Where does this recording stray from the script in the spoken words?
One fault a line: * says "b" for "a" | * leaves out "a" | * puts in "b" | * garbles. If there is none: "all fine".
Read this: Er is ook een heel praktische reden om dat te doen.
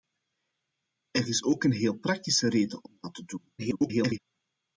* garbles